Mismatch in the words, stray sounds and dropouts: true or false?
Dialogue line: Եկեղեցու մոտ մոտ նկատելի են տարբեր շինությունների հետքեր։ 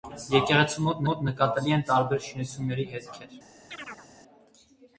true